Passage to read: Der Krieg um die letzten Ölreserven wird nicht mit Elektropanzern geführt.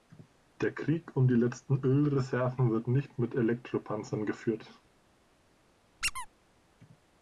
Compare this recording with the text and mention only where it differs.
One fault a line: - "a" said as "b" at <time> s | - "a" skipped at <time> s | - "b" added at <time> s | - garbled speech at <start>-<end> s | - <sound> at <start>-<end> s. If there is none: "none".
- squeak at 6.0-6.3 s